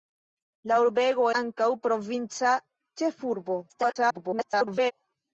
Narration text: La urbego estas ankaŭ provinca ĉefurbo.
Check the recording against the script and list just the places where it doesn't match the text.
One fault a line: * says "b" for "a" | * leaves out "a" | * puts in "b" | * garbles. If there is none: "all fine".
* leaves out "estas"
* garbles